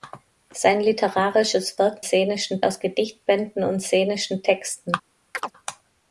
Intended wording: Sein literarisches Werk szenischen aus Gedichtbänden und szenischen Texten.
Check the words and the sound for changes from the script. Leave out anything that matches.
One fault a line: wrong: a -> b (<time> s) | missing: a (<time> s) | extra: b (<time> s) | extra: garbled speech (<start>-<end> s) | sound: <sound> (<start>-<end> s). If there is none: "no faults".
sound: chirp (5.3-5.5 s)